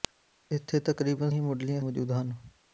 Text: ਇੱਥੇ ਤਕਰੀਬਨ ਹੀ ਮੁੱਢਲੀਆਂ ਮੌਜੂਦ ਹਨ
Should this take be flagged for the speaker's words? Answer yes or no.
no